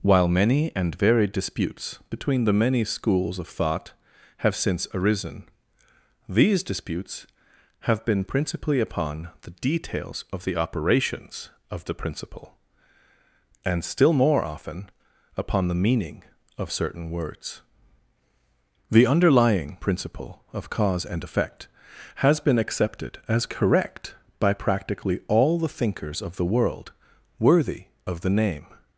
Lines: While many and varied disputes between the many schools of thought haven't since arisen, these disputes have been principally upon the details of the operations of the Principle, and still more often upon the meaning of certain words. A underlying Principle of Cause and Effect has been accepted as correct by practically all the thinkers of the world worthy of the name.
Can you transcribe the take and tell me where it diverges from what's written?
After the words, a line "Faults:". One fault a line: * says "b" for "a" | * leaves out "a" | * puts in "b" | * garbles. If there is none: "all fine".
While many and varied disputes between the many schools of thought have since arisen, these disputes have been principally upon the details of the operations of the Principle, and still more often upon the meaning of certain words. The underlying Principle of Cause and Effect has been accepted as correct by practically all the thinkers of the world worthy of the name.
Faults:
* says "have" for "haven't"
* says "The" for "A"